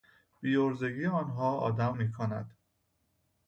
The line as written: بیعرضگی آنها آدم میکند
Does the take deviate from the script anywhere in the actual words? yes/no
no